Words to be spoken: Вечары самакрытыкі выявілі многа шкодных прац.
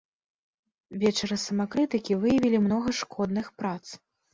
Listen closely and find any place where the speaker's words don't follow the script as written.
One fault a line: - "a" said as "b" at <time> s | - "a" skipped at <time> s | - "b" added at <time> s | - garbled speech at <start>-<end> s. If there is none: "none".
none